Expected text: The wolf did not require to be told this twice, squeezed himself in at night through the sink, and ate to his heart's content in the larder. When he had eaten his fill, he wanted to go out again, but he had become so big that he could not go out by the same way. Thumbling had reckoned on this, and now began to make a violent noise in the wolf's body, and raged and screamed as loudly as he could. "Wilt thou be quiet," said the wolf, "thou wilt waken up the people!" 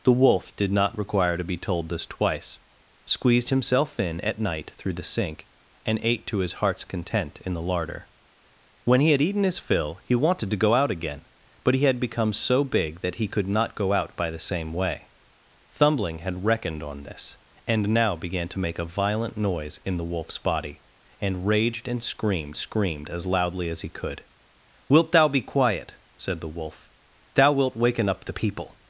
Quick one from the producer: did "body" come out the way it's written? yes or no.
yes